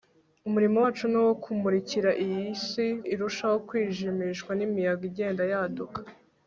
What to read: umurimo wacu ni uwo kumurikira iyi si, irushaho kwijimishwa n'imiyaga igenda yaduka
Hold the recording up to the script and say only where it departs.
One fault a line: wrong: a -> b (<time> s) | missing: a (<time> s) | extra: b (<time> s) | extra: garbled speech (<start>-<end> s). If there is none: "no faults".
no faults